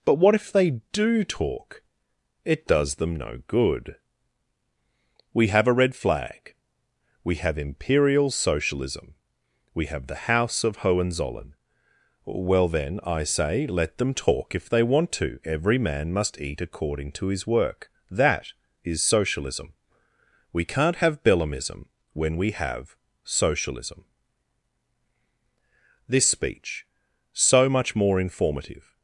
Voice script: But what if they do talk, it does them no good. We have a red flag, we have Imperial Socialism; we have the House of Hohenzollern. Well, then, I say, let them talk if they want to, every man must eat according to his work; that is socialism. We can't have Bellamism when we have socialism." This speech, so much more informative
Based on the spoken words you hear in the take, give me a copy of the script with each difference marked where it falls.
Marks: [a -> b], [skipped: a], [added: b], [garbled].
But what if they do talk, it does them no good. We have a red flag, we have Imperial Socialism; we have the House of Hohenzollern. Well, then, I say, let them talk if they want to, every man must eat according to his work; that is socialism. We can't have Bellamism when we have socialism." This speech, so much more informative